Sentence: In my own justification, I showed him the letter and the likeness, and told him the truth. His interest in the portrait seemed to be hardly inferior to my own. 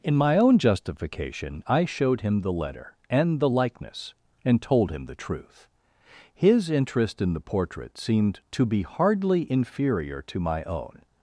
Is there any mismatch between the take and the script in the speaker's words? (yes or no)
no